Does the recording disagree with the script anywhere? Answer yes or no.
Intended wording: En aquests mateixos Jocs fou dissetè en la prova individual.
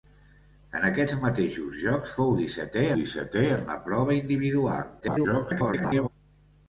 yes